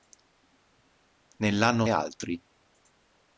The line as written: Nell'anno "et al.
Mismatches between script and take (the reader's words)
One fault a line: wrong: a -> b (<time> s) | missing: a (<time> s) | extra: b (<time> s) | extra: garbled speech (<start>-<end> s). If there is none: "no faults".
no faults